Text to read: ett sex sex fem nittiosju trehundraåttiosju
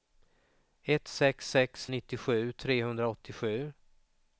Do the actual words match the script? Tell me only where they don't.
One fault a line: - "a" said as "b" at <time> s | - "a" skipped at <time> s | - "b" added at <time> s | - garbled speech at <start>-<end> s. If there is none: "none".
- "fem" skipped at 1.9 s